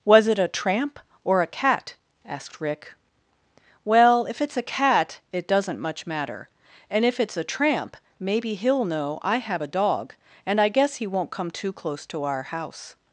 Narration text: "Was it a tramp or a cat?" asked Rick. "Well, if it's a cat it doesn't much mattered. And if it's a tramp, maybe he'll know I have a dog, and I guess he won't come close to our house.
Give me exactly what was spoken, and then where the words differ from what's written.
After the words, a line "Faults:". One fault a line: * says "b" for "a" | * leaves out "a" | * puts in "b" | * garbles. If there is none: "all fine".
"Was it a tramp or a cat?" asked Rick. "Well, if it's a cat it doesn't much matter. And if it's a tramp, maybe he'll know I have a dog, and I guess he won't come too close to our house.
Faults:
* says "matter" for "mattered"
* puts in "too"